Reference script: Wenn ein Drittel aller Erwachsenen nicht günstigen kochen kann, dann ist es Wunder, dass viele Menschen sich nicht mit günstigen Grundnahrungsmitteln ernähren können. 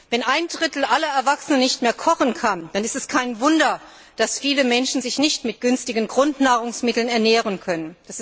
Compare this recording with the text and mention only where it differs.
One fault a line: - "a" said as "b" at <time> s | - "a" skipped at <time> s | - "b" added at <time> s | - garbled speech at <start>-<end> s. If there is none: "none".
- "günstigen" said as "mehr" at 1.8 s
- "kein" added at 3.1 s